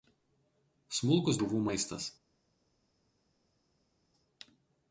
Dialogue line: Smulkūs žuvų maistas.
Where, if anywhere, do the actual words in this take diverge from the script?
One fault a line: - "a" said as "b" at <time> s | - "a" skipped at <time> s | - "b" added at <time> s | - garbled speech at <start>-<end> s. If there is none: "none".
none